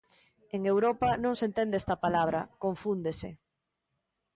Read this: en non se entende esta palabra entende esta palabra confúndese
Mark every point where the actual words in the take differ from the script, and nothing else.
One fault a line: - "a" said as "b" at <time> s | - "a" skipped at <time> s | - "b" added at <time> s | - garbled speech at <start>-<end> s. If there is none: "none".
- "europa" added at 0.7 s
- "entende esta palabra" skipped at 2.4 s